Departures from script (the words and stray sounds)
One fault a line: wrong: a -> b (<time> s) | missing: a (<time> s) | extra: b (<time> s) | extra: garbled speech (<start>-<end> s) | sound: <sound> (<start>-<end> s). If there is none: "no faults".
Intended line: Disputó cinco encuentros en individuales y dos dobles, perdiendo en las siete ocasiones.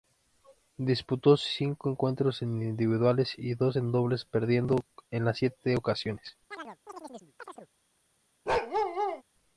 extra: en (3.7 s)
sound: chirp (6.5-7.7 s)
sound: bark (8.5-9.2 s)